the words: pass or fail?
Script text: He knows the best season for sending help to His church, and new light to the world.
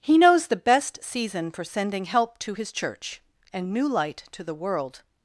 pass